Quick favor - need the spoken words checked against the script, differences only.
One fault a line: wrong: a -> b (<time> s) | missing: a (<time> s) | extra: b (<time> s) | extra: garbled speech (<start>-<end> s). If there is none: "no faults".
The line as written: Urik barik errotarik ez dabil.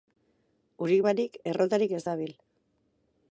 no faults